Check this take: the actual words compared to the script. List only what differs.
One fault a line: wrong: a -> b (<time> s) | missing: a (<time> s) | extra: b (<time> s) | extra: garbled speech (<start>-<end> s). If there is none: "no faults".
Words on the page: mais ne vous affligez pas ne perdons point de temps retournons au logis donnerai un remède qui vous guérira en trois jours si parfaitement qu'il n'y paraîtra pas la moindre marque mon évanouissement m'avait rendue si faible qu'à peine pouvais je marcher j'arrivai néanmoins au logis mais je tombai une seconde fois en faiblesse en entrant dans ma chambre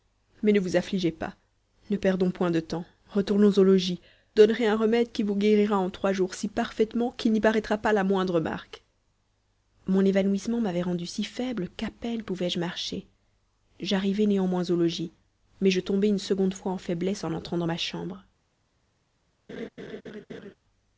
no faults